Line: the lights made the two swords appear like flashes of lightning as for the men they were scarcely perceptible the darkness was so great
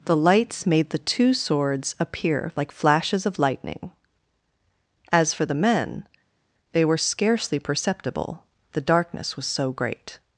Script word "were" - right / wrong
right